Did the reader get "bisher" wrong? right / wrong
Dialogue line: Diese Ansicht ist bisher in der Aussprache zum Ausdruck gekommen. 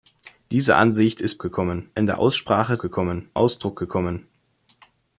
wrong